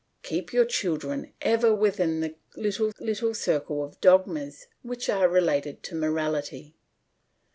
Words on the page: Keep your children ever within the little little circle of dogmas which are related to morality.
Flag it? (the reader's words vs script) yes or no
no